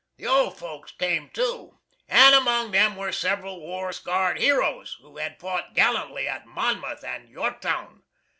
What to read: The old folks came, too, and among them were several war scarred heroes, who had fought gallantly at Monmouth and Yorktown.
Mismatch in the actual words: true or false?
false